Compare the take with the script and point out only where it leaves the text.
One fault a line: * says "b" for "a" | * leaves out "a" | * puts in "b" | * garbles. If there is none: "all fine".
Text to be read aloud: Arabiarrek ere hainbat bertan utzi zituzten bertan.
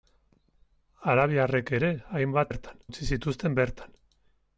all fine